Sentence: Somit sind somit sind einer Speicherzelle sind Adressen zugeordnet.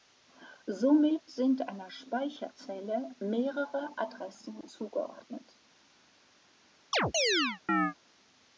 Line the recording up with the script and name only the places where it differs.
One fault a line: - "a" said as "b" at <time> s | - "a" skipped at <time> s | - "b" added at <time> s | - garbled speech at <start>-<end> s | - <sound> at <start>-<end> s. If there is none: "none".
- "somit sind" skipped at 1.7 s
- "sind" said as "mehrere" at 3.2 s
- chirp at 6.9-7.9 s